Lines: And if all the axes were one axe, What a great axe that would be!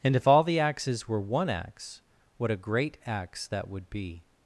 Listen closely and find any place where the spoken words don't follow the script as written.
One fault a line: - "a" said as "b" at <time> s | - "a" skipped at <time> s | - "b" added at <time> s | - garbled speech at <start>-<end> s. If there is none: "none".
none